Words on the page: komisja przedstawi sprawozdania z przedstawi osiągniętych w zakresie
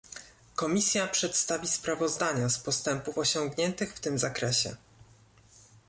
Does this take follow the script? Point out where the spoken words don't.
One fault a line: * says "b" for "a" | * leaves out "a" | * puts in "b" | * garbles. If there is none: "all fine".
* says "postępów" for "przedstawi"
* puts in "tym"